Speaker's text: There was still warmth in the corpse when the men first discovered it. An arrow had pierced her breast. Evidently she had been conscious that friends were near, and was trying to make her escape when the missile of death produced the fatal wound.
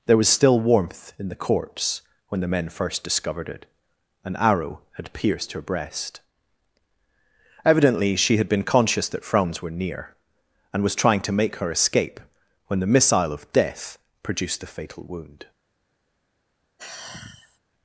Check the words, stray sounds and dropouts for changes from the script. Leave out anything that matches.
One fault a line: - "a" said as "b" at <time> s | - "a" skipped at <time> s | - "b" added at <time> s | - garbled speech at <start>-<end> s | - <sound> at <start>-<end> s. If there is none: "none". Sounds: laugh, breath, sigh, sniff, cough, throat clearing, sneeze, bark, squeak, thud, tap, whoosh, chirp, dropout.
- "friends" said as "franz" at 9.2 s
- sigh at 16.8-17.6 s